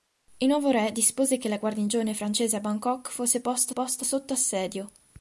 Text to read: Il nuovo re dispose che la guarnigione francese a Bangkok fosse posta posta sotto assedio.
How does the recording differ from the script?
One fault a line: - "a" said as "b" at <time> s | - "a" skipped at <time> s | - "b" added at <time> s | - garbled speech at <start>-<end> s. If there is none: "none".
none